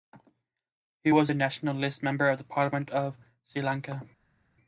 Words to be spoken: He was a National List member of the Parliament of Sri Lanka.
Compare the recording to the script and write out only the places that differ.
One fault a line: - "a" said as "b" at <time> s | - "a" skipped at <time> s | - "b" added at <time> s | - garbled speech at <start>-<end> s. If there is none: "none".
none